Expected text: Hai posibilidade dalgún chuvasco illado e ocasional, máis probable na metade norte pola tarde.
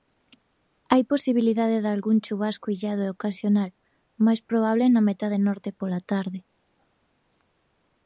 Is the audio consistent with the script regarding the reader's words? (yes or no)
yes